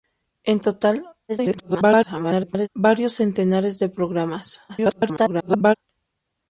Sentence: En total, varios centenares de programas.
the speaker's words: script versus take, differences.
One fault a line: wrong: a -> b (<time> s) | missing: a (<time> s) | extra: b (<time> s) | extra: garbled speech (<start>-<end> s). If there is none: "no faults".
extra: garbled speech (1.3-2.7 s)
extra: garbled speech (4.7-5.8 s)